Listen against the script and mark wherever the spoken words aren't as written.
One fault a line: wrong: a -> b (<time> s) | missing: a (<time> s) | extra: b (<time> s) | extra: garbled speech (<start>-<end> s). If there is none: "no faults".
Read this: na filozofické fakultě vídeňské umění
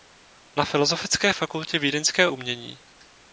no faults